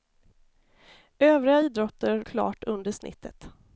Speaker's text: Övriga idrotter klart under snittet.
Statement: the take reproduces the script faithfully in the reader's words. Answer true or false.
true